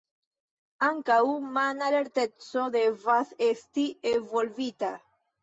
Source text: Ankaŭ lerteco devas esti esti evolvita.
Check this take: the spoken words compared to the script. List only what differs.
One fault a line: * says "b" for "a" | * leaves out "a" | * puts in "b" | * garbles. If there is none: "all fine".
* puts in "mana"
* leaves out "esti"